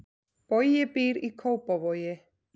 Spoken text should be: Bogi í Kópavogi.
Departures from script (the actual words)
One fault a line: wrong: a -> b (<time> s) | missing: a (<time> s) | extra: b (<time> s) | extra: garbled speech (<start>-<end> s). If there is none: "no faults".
extra: býr (0.9 s)